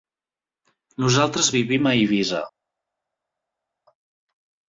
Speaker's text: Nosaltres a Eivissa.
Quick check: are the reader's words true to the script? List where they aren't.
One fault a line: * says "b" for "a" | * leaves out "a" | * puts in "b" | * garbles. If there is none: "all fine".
* puts in "vivim"